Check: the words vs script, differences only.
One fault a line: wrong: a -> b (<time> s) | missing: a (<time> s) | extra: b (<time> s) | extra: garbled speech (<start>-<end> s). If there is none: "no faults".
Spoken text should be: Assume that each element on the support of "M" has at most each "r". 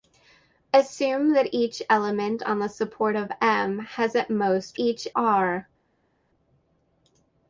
no faults